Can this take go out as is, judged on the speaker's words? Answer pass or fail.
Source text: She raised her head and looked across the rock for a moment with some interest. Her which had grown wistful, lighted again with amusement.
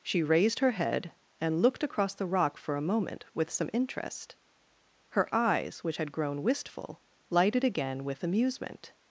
fail